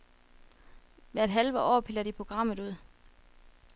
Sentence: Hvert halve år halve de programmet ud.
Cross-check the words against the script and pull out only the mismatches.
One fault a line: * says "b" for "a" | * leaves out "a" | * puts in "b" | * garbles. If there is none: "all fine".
* says "piller" for "halve"